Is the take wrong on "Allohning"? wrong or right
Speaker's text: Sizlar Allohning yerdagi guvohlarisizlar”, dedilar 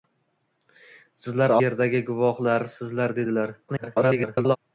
wrong